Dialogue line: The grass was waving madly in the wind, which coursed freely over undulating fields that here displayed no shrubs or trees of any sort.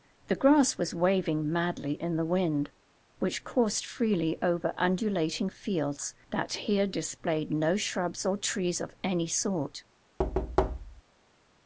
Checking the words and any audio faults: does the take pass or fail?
fail